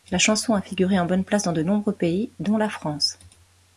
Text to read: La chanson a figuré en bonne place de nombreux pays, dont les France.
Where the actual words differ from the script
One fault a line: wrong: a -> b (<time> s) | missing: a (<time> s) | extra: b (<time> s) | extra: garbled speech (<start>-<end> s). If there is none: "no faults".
extra: dans (1.4 s)
wrong: les -> la (2.6 s)